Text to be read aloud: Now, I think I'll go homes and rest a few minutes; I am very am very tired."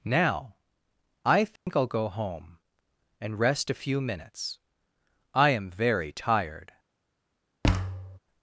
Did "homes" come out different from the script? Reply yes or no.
yes